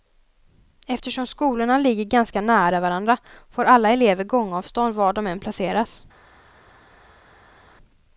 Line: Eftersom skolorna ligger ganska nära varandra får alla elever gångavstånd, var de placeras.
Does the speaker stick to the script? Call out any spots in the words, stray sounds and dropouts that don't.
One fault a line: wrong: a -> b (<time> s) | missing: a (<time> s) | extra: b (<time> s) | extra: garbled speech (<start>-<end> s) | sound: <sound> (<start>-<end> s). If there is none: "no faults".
extra: än (5.3 s)